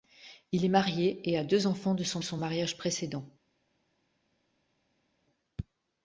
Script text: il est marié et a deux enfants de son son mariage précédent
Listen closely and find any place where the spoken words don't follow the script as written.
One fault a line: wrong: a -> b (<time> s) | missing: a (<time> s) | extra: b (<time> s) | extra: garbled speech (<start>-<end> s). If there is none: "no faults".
no faults